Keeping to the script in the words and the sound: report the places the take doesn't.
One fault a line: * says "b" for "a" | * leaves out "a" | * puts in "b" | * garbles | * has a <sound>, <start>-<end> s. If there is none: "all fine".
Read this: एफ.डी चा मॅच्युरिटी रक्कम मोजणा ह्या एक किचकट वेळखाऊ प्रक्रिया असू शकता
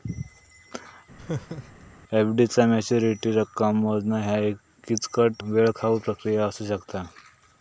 * has a laugh, 1.2-1.9 s